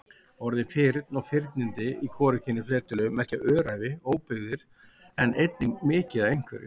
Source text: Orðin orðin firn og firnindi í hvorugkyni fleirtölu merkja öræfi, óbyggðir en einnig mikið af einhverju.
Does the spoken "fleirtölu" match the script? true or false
true